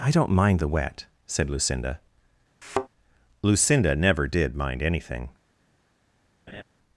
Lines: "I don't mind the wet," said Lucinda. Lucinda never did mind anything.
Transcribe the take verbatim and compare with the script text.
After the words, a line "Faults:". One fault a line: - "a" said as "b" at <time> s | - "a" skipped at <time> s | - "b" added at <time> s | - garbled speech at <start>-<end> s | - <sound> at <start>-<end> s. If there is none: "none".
"I don't mind the wet," said Lucinda. Lucinda never did mind anything.
Faults:
- thud at 2.6-2.9 s
- laugh at 6.5-6.6 s